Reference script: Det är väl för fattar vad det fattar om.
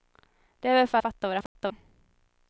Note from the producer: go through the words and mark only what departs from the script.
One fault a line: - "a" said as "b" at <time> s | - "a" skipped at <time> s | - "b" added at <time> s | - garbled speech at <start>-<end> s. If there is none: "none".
none